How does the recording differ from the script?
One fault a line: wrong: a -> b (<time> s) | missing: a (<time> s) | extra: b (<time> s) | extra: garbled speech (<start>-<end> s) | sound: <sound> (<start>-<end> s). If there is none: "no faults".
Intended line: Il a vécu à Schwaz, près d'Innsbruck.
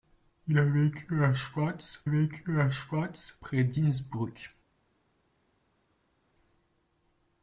extra: vécu à Schwaz (2.0 s)